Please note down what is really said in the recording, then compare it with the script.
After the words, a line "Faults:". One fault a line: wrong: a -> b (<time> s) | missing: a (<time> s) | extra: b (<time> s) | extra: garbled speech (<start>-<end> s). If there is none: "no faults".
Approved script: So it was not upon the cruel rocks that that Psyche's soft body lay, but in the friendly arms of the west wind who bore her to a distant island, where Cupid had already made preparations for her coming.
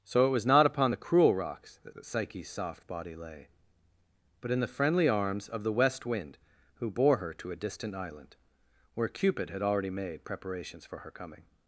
So it was not upon the cruel rocks that that Psyche's soft body lay, but in the friendly arms of the west wind who bore her to a distant island, where Cupid had already made preparations for her coming.
Faults:
no faults